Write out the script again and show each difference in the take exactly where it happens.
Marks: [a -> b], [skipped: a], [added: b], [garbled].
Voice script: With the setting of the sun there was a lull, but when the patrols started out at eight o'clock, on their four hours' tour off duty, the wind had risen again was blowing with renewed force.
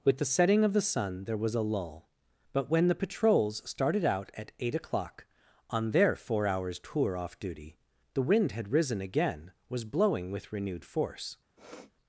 With the setting of the sun there was a lull, but when the patrols started out at eight o'clock, on their four hours' tour off duty, the wind had risen again was blowing with renewed force.